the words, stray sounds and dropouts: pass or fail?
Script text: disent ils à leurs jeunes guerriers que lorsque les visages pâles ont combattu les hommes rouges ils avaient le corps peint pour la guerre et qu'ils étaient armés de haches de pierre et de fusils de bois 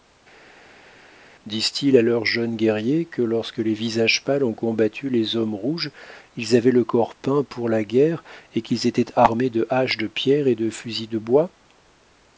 pass